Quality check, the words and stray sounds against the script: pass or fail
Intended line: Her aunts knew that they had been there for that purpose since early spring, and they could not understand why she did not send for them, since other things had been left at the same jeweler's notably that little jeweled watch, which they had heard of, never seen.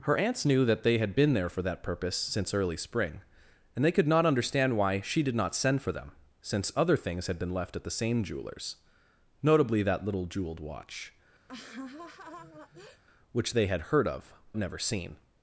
fail